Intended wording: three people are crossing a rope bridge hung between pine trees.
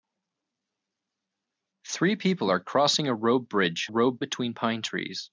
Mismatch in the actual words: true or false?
true